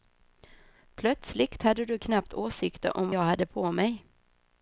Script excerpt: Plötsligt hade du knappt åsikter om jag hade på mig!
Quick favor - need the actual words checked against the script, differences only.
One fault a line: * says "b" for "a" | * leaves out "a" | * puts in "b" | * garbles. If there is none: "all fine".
all fine